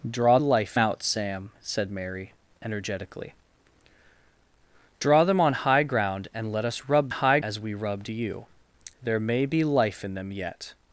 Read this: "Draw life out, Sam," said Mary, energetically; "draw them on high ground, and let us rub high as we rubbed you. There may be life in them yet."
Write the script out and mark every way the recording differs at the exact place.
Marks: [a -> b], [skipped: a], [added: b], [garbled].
"Draw life out, Sam," said Mary, energetically; "draw them on high ground, and let us rub high as we rubbed you. There may be life in them yet."